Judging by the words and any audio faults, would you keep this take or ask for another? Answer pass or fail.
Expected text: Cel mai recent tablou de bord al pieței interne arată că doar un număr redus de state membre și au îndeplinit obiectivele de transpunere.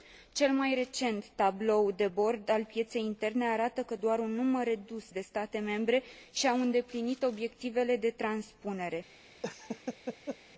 fail